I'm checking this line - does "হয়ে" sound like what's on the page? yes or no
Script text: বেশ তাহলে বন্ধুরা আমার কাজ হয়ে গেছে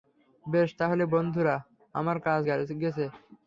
no